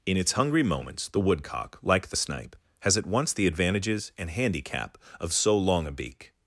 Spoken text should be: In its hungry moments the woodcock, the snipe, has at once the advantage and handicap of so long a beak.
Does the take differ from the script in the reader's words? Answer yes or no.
yes